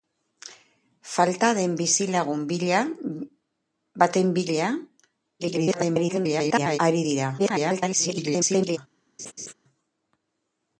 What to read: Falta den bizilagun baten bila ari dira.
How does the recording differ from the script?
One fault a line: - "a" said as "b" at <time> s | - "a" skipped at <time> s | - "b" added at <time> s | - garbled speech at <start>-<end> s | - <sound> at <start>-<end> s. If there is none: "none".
- garbled speech at 5.4-6.8 s
- garbled speech at 7.4-8.8 s
- laugh at 9.2-9.5 s